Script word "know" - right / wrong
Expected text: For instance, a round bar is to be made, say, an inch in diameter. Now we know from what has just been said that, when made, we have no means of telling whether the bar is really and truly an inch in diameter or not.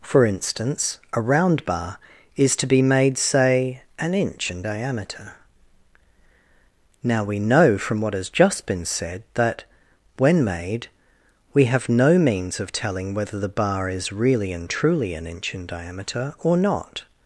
right